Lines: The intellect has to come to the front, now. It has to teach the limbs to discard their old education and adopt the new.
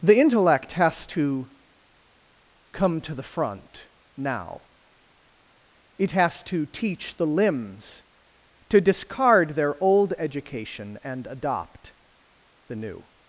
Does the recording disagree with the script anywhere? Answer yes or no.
no